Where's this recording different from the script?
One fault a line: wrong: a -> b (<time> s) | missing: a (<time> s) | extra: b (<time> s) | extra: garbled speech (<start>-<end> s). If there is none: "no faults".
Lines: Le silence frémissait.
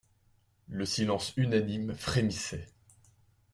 extra: unanime (1.4 s)